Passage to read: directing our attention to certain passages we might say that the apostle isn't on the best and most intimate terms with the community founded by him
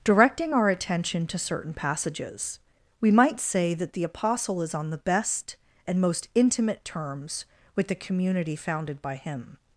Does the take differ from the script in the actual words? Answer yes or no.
yes